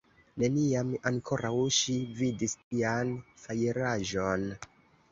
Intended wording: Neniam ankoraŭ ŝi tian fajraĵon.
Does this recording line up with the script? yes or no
no